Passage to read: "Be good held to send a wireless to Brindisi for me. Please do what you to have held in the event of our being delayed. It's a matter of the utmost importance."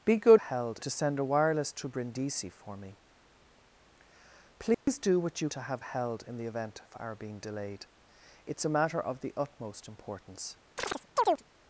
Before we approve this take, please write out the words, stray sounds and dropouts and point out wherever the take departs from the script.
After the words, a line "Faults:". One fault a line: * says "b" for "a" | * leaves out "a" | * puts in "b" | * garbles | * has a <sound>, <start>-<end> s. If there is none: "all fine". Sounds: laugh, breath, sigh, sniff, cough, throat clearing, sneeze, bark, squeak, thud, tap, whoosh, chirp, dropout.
"Be good held to send a wireless to Brindisi for me. Please do what you to have held in the event of our being delayed. It's a matter of the utmost importance."
Faults:
* has a dropout, 4.7-4.9 s
* has a chirp, 10.8-11.4 s